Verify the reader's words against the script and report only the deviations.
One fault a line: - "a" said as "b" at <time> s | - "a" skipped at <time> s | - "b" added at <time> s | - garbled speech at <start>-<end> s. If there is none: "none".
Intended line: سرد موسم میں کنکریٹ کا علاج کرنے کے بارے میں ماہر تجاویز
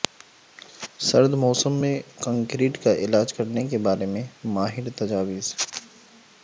none